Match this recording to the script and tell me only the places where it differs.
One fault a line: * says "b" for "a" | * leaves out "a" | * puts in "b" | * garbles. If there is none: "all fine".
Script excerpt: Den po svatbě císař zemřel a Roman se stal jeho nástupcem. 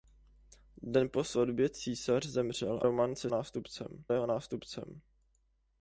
* leaves out "a"
* says "nástupcem" for "stal"